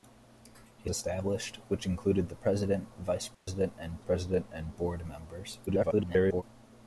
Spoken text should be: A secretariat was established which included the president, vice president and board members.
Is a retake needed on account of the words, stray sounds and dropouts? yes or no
yes